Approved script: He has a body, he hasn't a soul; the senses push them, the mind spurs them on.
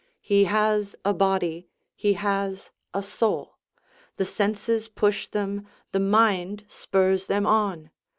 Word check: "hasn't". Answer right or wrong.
wrong